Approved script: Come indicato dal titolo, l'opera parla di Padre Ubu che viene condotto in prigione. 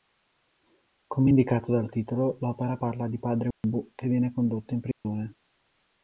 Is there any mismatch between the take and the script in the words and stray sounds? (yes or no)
yes